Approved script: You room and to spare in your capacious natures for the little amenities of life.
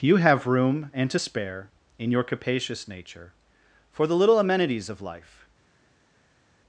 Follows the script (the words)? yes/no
no